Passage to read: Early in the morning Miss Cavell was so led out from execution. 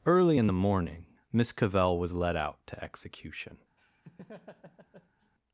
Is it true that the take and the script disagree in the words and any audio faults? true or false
true